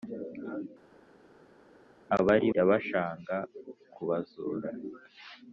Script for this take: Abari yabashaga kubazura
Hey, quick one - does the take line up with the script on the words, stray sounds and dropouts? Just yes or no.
yes